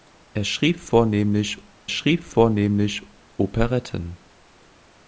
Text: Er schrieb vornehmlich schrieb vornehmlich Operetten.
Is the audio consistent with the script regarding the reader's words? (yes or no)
yes